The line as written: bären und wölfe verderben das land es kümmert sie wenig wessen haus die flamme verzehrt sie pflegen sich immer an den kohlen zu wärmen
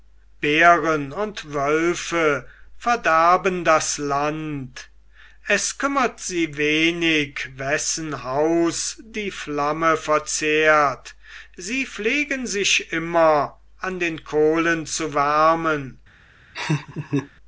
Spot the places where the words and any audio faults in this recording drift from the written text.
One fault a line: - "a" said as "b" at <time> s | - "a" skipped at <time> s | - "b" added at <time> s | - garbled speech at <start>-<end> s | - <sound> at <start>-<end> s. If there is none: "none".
- laugh at 16.5-17.3 s